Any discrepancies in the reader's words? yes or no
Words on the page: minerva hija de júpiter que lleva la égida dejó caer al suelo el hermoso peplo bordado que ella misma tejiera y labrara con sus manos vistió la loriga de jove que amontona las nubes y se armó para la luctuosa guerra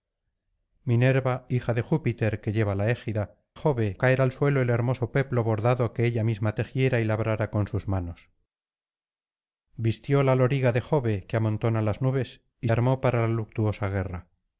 yes